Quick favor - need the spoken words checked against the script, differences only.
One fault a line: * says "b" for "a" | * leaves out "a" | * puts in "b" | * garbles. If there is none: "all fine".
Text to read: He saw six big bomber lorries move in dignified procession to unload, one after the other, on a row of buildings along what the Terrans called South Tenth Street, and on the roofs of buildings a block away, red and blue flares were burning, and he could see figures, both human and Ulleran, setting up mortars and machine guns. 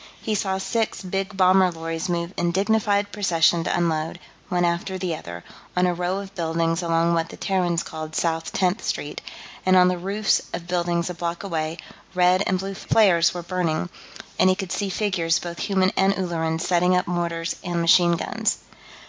all fine